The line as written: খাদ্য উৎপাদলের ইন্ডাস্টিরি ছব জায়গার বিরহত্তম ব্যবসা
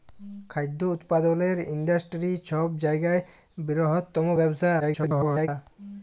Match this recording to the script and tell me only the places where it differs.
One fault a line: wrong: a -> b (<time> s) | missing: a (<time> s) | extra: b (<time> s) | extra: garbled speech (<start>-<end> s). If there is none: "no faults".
extra: garbled speech (4.8-5.5 s)